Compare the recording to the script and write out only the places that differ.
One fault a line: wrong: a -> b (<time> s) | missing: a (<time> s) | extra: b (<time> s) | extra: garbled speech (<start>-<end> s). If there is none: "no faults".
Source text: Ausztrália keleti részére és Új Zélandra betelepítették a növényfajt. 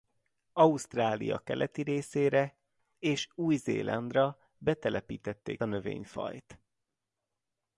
no faults